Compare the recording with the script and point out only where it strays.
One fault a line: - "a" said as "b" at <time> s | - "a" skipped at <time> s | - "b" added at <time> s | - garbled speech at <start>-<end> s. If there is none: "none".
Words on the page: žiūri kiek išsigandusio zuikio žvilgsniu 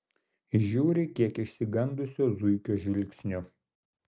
none